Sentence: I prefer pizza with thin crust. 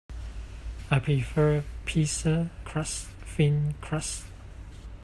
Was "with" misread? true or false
true